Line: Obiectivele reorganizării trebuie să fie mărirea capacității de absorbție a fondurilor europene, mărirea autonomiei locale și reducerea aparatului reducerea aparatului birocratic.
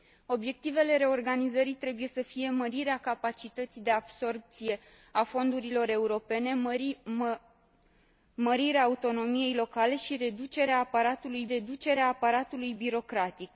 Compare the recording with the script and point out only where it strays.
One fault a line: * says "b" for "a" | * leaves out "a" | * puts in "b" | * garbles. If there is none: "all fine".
all fine